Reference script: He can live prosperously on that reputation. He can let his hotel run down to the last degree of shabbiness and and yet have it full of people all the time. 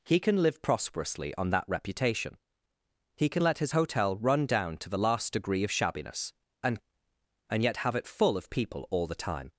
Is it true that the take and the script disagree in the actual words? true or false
false